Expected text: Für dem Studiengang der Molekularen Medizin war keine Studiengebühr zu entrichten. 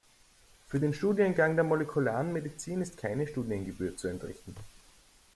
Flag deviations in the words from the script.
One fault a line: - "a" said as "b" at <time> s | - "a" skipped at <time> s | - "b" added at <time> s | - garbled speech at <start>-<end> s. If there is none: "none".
- "dem" said as "den" at 0.8 s
- "war" said as "ist" at 2.8 s